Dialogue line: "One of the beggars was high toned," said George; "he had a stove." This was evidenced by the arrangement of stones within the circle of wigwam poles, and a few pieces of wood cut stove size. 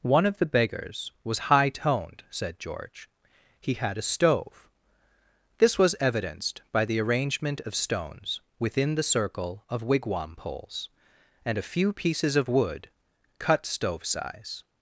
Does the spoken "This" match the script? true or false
true